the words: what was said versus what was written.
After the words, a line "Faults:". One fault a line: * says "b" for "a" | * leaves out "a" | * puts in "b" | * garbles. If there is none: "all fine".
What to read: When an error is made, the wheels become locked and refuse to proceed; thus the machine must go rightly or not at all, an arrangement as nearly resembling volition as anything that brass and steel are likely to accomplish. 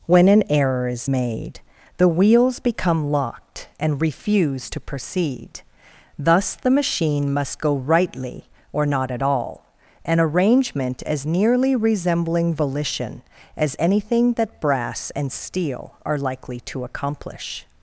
When an error is made, the wheels become locked and refuse to proceed; thus the machine must go rightly or not at all, an arrangement as nearly resembling volition as anything that brass and steel are likely to accomplish.
Faults:
all fine